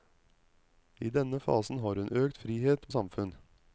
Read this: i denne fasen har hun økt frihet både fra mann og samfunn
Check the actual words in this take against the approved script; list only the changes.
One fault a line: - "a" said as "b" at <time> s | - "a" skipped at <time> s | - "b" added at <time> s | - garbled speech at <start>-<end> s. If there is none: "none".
- "både fra mann" skipped at 2.9 s